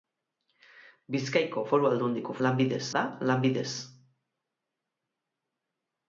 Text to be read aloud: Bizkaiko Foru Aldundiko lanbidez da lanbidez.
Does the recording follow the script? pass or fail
pass